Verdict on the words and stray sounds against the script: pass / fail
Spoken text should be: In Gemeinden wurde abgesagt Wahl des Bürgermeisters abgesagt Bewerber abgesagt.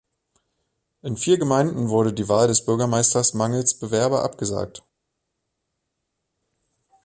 fail